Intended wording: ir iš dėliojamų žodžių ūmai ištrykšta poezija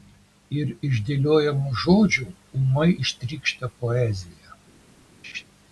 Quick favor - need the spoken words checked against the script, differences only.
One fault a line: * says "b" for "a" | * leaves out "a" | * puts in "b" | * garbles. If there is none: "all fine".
all fine